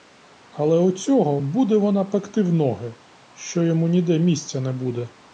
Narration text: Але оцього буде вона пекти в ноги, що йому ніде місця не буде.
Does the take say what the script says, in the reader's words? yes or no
yes